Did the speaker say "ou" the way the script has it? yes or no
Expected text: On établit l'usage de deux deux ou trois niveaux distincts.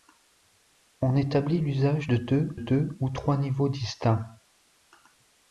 yes